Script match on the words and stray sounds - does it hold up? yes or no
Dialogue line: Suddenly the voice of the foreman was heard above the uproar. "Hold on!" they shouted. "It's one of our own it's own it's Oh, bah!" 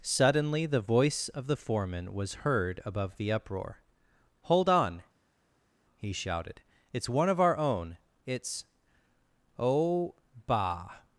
no